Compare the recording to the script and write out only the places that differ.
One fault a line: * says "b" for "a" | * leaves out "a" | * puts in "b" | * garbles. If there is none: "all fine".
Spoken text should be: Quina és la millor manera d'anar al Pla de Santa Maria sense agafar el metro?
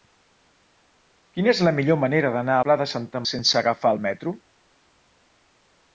* leaves out "al"
* leaves out "Maria"